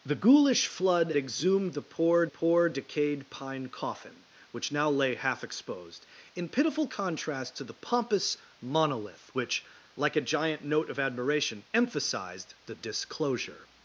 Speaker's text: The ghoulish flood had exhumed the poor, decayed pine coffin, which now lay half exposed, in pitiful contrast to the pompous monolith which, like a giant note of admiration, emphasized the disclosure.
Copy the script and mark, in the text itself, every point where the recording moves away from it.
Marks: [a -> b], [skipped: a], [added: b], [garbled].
The ghoulish flood [skipped: had] exhumed the poor, [added: poor] decayed pine coffin, which now lay half exposed, in pitiful contrast to the pompous monolith which, like a giant note of admiration, emphasized the disclosure.